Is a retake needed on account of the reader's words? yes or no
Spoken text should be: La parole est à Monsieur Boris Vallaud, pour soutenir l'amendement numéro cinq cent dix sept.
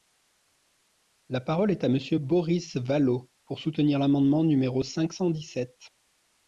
no